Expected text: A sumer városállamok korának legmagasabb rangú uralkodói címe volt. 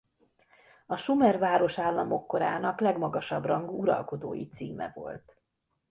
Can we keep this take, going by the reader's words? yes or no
yes